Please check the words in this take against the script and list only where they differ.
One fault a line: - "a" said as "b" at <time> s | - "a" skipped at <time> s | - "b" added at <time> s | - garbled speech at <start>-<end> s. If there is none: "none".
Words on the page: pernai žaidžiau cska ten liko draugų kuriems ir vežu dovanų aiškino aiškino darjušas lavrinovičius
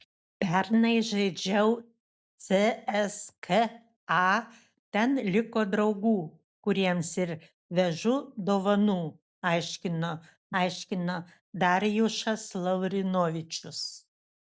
none